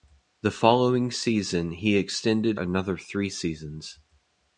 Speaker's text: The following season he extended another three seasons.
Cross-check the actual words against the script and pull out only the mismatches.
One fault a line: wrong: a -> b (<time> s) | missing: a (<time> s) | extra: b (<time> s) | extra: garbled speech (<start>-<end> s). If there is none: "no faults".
no faults